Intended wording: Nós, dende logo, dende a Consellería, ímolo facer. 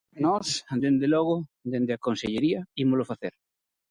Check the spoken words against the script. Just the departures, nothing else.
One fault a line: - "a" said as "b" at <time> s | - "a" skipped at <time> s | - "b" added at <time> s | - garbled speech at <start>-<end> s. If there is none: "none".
none